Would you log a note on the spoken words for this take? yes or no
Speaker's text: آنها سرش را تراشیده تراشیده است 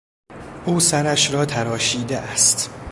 yes